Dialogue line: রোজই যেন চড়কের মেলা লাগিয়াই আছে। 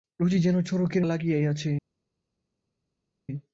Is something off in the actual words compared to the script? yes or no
yes